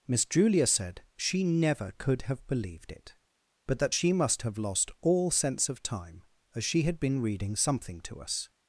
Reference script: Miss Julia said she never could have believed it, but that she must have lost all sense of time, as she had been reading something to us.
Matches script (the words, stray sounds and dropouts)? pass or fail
pass